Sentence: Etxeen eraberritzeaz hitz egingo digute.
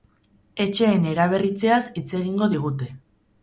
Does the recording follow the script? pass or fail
pass